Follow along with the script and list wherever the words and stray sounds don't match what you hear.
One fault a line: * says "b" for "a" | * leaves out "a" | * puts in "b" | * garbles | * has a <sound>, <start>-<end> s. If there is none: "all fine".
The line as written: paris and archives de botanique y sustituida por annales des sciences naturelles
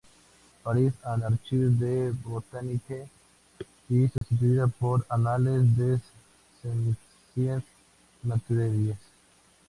* has a dropout, 4.2-4.2 s